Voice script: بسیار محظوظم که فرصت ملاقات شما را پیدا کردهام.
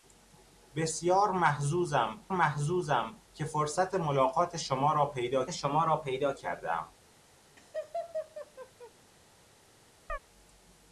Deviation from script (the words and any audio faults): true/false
true